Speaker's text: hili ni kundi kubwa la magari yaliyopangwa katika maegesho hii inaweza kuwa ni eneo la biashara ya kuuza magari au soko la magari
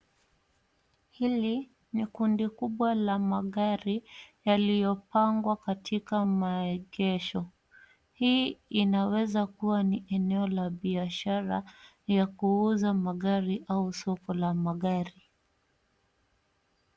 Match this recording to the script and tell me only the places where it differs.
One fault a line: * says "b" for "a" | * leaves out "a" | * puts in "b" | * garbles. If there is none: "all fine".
all fine